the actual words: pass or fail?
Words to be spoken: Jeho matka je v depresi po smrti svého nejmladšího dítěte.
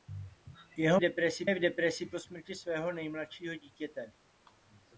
fail